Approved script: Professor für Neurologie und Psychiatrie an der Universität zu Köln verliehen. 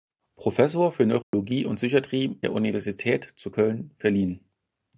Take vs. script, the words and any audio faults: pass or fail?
fail